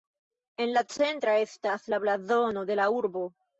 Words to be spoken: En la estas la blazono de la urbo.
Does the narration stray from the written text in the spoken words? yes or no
yes